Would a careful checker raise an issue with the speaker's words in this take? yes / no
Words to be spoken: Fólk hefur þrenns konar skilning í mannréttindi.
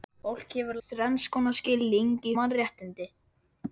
no